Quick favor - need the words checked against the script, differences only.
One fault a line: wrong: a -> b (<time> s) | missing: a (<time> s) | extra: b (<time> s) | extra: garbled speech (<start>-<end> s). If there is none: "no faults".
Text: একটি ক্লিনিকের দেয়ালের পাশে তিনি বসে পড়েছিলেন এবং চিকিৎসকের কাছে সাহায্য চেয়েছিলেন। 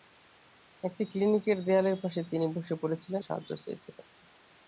missing: এবং চিকিৎসকের কাছে (3.2 s)